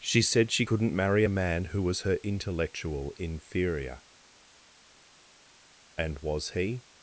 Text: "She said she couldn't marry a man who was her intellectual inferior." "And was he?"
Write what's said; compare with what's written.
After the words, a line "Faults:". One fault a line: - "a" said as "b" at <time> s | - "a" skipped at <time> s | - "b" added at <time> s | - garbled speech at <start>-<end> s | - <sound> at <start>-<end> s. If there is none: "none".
"She said she couldn't marry a man who was her intellectual inferior." "And was he?"
Faults:
none